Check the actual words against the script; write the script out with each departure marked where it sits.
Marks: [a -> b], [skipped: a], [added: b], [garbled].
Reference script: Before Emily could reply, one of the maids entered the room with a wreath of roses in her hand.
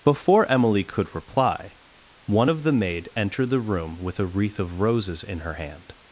Before Emily could reply, one of the [maids -> maid] entered the room with a wreath of roses in her hand.